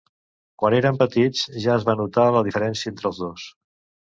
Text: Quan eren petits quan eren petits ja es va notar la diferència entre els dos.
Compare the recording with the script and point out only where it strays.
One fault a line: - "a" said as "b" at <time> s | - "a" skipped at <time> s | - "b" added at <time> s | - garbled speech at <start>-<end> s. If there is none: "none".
- "quan eren petits" skipped at 1.4 s